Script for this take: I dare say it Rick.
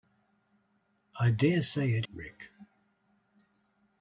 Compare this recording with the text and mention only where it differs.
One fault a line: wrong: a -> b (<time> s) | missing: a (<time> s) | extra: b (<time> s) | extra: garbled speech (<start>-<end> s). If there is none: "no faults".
no faults